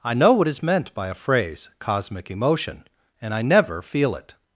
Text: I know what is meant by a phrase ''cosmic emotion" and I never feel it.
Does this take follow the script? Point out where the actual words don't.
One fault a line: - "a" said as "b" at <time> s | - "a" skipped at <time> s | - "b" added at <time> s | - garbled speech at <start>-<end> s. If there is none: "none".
none